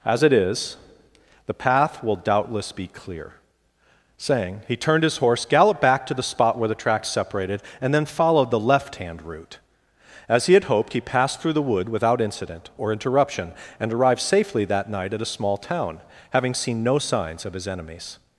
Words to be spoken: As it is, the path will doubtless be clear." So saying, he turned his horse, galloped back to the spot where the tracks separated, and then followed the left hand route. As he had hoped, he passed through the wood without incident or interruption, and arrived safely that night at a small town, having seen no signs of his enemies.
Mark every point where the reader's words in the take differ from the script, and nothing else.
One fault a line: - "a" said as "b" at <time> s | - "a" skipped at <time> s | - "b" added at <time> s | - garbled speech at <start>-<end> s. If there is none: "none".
- "So" skipped at 3.3 s